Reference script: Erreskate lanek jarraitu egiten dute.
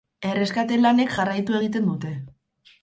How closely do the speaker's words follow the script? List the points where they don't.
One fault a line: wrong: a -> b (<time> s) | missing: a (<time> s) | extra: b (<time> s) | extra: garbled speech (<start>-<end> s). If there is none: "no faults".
no faults